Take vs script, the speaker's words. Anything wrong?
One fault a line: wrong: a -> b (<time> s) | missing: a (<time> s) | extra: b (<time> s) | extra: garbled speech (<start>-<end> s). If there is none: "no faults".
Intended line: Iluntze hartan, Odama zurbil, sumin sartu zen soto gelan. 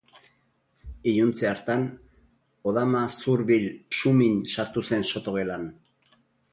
no faults